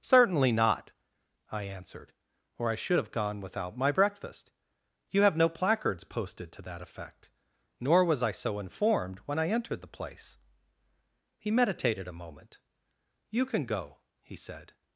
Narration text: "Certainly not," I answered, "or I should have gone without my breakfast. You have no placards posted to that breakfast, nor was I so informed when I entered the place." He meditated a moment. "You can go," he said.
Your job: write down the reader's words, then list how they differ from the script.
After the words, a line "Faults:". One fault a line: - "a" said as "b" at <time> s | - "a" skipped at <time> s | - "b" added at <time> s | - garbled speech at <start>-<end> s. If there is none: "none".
"Certainly not," I answered, "or I should have gone without my breakfast. You have no placards posted to that effect, nor was I so informed when I entered the place." He meditated a moment. "You can go," he said.
Faults:
- "breakfast" said as "effect" at 6.8 s